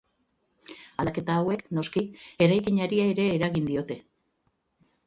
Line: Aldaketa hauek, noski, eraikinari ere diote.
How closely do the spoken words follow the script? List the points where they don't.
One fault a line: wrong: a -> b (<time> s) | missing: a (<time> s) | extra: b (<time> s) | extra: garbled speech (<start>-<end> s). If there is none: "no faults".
extra: eragin (3.4 s)